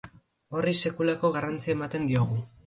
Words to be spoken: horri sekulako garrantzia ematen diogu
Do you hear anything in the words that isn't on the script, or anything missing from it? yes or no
no